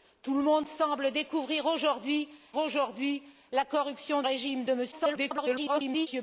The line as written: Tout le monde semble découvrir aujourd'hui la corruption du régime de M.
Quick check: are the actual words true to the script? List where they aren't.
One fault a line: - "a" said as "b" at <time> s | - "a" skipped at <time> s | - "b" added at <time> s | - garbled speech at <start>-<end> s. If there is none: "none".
- "aujourd'hui" added at 2.6 s
- "du" skipped at 4.2 s
- garbled speech at 4.9-6.1 s